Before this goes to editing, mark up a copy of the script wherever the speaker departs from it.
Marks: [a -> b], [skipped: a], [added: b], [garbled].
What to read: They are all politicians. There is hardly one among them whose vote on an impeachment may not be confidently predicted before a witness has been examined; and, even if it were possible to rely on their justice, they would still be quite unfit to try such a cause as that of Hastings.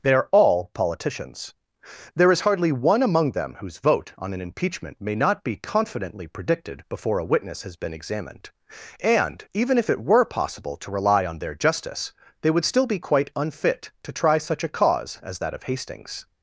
They are all politicians. There is hardly one among them whose vote on an impeachment may not be confidently predicted before a witness has been examined; and, even if it were possible to rely on their justice, they would still be quite unfit to try such a cause as that of Hastings.